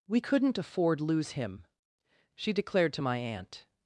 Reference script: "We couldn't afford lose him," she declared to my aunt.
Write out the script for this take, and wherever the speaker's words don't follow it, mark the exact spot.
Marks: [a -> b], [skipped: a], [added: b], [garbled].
"We couldn't afford lose him," she declared to my aunt.